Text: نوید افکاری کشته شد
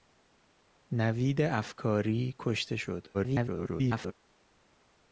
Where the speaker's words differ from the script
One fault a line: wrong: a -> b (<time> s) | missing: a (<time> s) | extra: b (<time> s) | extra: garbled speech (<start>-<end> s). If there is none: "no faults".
extra: garbled speech (3.1-4.1 s)